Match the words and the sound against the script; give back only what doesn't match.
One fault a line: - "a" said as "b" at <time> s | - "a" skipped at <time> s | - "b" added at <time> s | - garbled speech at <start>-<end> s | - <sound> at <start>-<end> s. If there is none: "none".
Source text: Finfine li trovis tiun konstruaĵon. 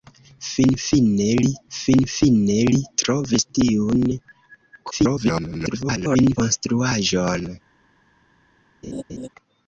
- "finfine li" added at 1.7 s
- garbled speech at 4.9-6.4 s
- laugh at 8.8-9.3 s